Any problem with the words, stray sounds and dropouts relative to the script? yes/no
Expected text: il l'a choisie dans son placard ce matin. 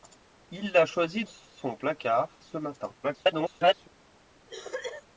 yes